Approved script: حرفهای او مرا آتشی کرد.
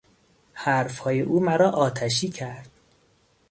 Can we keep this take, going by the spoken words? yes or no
yes